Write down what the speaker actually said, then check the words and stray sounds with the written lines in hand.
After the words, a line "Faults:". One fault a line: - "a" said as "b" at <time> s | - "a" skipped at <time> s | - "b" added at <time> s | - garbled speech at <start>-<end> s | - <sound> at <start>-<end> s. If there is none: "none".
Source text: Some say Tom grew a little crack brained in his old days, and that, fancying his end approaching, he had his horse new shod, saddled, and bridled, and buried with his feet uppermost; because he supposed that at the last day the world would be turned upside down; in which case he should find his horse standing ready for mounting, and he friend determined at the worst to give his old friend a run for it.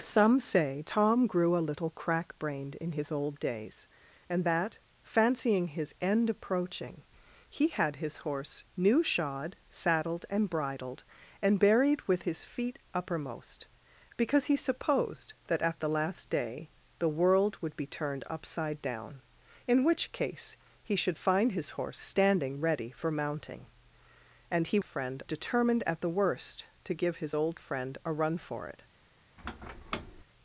Some say Tom grew a little crack brained in his old days, and that, fancying his end approaching, he had his horse new shod, saddled, and bridled, and buried with his feet uppermost; because he supposed that at the last day the world would be turned upside down; in which case he should find his horse standing ready for mounting, and he friend determined at the worst to give his old friend a run for it.
Faults:
- squeak at 29.4-30.2 s